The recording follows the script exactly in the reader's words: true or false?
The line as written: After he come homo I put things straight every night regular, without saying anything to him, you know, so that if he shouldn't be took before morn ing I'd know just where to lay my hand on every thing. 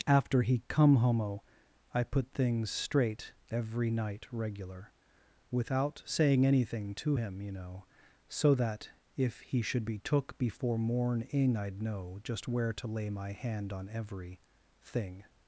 false